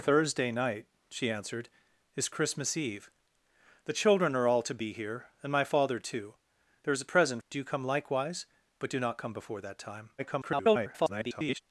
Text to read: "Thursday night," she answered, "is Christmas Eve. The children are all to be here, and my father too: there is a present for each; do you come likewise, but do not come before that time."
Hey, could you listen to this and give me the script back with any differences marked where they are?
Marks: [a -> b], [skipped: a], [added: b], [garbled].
"Thursday night," she answered, "is Christmas Eve. The children are all to be here, and my father too: there is a present [skipped: for each;] do you come likewise, but do not come before that time." [garbled]